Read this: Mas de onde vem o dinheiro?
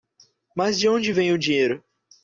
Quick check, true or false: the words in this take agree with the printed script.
true